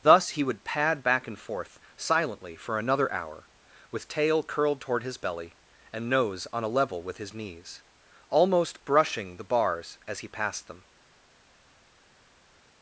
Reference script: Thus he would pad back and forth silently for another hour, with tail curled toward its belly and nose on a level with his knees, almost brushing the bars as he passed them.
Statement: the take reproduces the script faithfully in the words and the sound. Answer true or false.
false